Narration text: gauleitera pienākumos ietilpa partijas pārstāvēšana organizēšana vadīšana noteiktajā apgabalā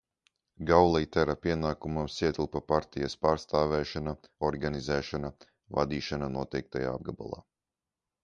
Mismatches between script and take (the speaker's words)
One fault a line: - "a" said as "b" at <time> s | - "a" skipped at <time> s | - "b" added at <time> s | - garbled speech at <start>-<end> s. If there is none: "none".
none